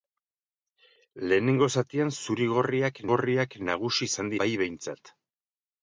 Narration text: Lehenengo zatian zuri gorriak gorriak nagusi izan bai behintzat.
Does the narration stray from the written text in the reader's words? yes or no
no